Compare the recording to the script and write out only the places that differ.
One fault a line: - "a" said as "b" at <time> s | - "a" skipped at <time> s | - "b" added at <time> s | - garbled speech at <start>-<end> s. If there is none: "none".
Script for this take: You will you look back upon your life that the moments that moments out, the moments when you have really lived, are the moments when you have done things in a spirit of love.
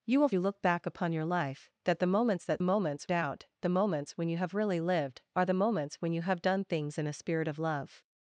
none